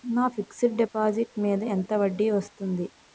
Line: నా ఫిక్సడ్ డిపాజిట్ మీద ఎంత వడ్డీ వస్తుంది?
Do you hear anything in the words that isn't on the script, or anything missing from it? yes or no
no